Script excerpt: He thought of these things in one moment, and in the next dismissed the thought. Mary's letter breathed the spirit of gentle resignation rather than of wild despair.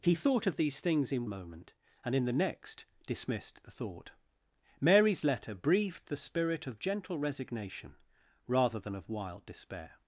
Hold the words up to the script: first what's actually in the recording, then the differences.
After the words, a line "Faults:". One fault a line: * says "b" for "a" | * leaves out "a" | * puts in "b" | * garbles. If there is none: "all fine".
He thought of these things in moment, and in the next dismissed the thought. Mary's letter breathed the spirit of gentle resignation rather than of wild despair.
Faults:
* leaves out "one"